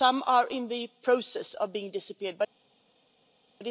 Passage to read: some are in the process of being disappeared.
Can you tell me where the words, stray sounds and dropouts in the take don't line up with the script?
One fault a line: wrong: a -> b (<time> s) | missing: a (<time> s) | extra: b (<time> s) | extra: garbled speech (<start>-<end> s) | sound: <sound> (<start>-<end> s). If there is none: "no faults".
no faults